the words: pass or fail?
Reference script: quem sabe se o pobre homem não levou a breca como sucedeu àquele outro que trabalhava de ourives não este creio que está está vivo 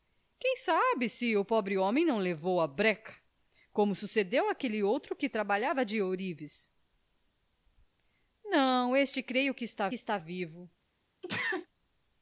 pass